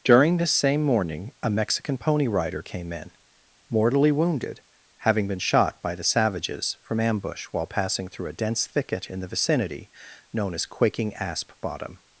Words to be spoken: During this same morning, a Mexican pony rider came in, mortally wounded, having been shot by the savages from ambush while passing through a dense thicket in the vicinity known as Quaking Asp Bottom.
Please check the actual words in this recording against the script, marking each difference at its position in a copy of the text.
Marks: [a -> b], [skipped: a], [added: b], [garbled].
During this same morning, a Mexican pony rider came in, mortally wounded, having been shot by the savages from ambush while passing through a dense thicket in the vicinity known as Quaking Asp Bottom.